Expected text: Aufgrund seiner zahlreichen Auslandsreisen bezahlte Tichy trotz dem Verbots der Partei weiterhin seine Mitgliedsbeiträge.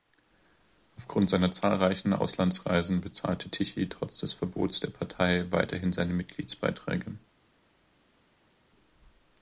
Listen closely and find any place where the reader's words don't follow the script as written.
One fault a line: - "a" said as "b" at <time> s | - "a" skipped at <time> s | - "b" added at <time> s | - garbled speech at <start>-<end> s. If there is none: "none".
- "dem" said as "des" at 4.2 s